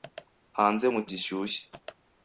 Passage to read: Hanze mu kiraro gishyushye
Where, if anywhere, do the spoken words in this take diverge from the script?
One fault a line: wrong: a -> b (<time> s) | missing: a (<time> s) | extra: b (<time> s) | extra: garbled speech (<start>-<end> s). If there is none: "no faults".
missing: kiraro (1.0 s)